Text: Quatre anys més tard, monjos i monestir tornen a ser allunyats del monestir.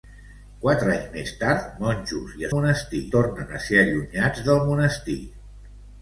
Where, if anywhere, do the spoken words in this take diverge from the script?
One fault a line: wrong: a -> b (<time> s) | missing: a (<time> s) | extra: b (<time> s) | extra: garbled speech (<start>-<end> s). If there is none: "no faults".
no faults